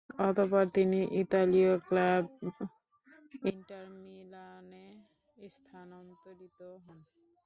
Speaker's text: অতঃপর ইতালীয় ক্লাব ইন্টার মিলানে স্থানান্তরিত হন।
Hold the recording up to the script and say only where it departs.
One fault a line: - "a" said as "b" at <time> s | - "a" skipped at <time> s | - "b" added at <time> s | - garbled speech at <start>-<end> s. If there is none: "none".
- "তিনি" added at 0.8 s